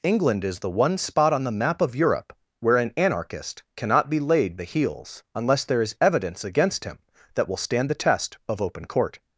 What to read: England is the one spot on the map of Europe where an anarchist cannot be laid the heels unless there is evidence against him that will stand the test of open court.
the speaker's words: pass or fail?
pass